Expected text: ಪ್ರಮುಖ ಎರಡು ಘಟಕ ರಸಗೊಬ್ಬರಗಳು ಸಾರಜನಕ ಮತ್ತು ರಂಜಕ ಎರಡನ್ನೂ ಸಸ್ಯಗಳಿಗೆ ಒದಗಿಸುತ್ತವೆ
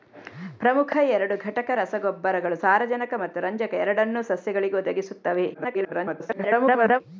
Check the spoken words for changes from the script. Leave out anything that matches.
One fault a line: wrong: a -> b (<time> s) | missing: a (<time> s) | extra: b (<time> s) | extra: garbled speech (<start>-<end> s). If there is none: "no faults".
extra: garbled speech (5.5-7.0 s)